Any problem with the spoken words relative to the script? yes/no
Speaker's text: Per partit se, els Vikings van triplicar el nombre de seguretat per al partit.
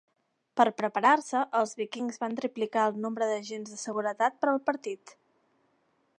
yes